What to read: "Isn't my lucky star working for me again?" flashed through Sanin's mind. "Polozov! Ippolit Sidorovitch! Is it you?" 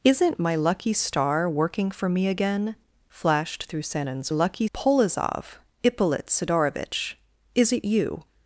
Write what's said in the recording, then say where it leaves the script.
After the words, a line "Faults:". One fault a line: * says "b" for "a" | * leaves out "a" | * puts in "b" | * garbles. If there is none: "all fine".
"Isn't my lucky star working for me again?" flashed through Sanin's lucky. "Polozov! Ippolit Sidorovitch! Is it you?"
Faults:
* says "lucky" for "mind"